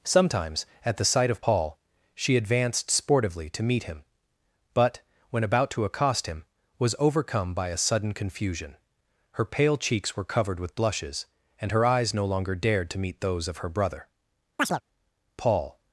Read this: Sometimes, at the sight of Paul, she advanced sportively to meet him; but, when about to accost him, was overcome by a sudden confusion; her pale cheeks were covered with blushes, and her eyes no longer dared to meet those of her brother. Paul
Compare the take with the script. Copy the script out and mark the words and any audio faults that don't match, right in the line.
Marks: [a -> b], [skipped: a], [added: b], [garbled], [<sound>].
Sometimes, at the sight of Paul, she advanced sportively to meet him; but, when about to accost him, was overcome by a sudden confusion; her pale cheeks were covered with blushes, and her eyes no longer dared to meet those of her brother. [chirp] Paul